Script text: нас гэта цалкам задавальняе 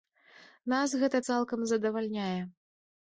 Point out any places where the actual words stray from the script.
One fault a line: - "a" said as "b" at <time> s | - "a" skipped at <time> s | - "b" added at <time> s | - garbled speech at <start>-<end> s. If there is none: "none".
none